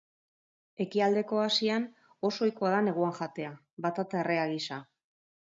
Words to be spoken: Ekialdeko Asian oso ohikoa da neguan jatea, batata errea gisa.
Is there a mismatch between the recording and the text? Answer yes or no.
no